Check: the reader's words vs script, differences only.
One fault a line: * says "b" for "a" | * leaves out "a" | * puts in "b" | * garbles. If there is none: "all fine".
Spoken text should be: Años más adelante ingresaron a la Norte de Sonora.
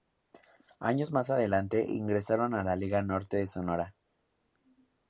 * puts in "Liga"